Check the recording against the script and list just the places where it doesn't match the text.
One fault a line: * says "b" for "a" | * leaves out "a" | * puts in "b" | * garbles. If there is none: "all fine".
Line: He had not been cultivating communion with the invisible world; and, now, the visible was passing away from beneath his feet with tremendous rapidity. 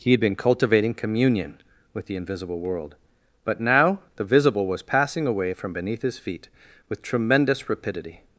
* leaves out "not"
* says "but" for "and"